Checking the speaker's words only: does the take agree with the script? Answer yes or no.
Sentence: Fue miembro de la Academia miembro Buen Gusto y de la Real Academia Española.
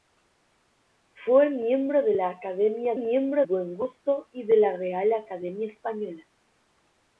yes